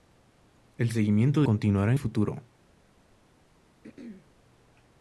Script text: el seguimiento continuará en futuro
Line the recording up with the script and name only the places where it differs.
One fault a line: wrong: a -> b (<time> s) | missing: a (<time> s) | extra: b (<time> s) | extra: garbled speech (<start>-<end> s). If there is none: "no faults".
no faults